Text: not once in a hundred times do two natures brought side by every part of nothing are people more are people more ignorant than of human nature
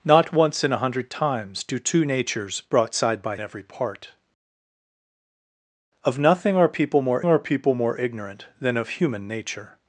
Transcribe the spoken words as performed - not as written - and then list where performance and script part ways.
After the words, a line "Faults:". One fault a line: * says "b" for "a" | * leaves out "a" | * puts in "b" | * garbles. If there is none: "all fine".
not once in a hundred times do two natures brought side by every part of nothing are people more are people more ignorant than of human nature
Faults:
all fine